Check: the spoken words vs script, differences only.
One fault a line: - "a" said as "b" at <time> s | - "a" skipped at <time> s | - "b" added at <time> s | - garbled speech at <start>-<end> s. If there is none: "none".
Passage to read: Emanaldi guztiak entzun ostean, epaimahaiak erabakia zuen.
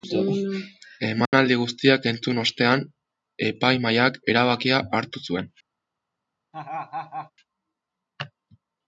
- "hartu" added at 5.0 s